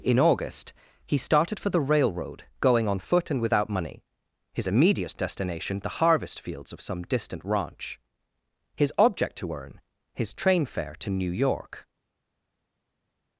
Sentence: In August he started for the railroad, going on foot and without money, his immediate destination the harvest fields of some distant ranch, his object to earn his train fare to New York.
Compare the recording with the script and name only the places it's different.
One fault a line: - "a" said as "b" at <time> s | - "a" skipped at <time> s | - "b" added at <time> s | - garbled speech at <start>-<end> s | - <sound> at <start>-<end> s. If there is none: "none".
none